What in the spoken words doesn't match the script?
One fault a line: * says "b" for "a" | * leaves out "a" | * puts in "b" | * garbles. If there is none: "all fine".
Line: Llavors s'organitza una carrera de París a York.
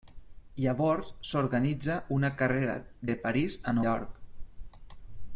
all fine